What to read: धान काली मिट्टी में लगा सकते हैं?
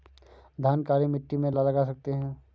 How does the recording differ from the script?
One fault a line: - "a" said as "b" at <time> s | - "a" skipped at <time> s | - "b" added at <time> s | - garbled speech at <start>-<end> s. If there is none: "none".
none